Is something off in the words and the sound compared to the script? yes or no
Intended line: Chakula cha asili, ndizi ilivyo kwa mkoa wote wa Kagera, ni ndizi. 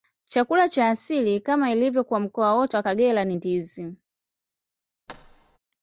yes